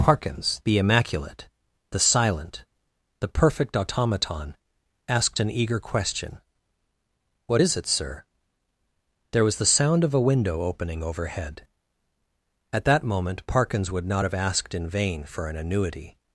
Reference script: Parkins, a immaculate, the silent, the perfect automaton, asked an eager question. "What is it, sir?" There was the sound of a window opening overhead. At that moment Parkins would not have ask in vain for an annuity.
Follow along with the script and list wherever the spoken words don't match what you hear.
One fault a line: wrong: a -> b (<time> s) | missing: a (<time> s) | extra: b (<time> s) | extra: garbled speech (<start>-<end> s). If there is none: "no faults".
wrong: a -> the (0.6 s)
wrong: ask -> asked (14.3 s)